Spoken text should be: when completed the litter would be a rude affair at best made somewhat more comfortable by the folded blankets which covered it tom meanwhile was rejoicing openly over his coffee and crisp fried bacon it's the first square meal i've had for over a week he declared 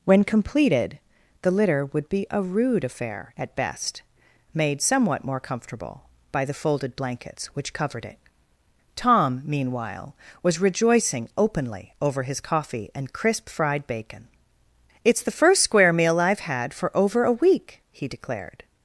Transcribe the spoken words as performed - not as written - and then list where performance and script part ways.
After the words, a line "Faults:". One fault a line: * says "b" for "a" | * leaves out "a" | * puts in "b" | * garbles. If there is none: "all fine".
when completed the litter would be a rude affair at best made somewhat more comfortable by the folded blankets which covered it tom meanwhile was rejoicing openly over his coffee and crisp fried bacon it's the first square meal i've had for over a week he declared
Faults:
all fine